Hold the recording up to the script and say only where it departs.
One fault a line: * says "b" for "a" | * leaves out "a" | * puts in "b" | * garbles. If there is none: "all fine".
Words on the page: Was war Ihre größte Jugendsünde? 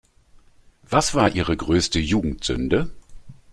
all fine